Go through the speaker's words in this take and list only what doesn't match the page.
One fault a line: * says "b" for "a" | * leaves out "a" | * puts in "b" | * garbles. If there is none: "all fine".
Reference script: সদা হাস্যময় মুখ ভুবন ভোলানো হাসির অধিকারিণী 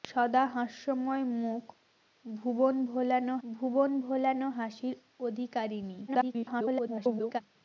* puts in "ভুবন ভোলানো"
* garbles